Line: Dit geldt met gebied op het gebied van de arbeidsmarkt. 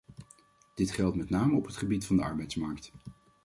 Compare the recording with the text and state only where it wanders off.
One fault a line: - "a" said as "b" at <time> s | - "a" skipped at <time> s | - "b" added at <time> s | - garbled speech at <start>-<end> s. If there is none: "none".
- "gebied" said as "name" at 1.3 s